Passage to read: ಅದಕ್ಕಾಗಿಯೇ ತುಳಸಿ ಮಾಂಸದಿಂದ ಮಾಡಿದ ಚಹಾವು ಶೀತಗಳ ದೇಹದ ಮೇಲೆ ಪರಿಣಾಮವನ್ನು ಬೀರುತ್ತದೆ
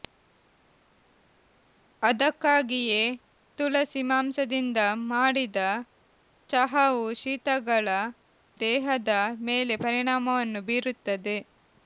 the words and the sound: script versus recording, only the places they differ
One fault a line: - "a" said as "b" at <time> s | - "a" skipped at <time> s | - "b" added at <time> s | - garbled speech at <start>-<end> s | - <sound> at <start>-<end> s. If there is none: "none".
none